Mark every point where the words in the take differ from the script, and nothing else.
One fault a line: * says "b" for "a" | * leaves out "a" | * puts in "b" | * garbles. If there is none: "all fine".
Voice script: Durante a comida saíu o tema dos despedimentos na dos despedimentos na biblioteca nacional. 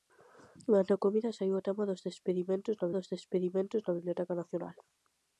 all fine